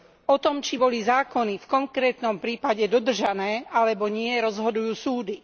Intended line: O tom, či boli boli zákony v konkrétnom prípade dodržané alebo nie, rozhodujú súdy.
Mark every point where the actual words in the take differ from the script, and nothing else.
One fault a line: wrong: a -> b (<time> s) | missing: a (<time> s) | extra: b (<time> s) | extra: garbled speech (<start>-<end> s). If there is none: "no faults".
missing: boli (1.0 s)